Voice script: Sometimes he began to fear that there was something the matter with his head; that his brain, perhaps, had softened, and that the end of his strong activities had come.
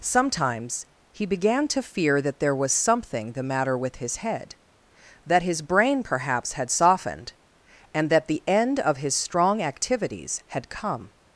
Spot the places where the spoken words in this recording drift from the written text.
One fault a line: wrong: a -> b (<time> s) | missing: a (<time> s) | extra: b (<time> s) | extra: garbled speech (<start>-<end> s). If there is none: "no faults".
no faults